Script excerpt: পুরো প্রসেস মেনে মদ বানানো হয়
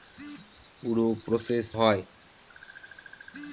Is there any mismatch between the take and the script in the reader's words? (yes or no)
yes